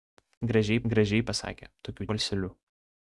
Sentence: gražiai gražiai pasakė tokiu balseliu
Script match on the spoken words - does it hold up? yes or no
yes